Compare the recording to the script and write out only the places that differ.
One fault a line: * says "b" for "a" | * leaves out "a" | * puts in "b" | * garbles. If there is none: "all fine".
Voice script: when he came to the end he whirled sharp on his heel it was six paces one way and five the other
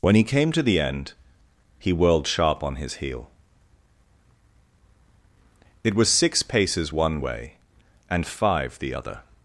all fine